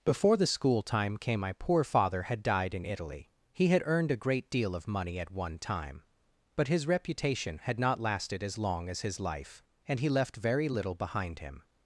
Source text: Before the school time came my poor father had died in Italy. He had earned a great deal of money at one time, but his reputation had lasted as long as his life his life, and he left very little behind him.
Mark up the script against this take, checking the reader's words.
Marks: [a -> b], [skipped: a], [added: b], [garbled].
Before the school time came my poor father had died in Italy. He had earned a great deal of money at one time, but his reputation had [added: not] lasted as long as his life [skipped: his life,] and he left very little behind him.